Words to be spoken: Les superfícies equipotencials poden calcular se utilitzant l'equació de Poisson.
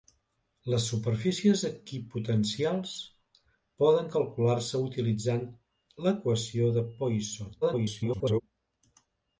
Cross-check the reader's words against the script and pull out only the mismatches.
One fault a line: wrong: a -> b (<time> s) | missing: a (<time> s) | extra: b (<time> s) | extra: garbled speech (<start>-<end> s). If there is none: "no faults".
extra: garbled speech (7.6-8.4 s)